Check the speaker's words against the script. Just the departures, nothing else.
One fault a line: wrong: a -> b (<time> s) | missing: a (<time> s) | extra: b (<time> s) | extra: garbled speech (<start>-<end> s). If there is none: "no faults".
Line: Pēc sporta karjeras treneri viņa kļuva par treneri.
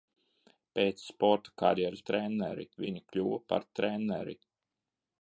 no faults